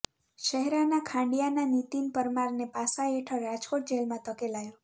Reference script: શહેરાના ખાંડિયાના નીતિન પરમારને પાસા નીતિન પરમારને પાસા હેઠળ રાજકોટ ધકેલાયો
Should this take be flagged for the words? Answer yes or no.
yes